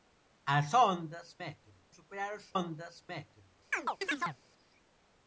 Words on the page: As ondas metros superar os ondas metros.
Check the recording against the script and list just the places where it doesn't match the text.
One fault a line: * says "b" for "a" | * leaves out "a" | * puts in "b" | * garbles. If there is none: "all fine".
all fine